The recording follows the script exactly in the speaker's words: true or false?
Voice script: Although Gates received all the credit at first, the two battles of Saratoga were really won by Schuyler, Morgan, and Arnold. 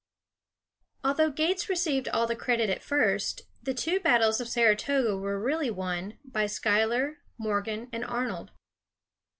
true